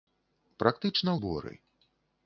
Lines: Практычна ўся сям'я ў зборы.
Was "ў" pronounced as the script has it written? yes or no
no